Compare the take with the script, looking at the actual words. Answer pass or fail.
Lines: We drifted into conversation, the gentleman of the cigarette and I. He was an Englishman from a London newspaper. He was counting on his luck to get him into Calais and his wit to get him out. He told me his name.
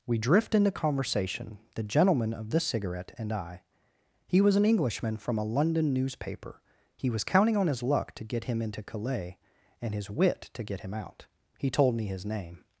fail